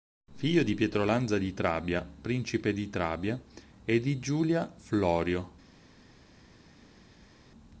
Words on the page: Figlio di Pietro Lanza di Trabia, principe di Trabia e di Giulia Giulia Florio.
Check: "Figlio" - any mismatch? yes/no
no